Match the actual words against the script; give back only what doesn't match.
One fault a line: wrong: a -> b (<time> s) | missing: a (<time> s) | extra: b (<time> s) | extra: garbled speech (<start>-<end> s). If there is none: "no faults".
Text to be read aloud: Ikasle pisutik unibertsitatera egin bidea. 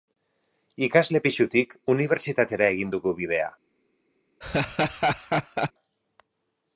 extra: dugu (3.0 s)